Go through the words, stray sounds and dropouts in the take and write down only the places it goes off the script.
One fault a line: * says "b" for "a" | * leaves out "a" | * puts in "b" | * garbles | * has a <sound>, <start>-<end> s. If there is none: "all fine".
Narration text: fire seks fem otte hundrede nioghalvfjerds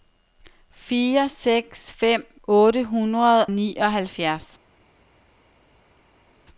all fine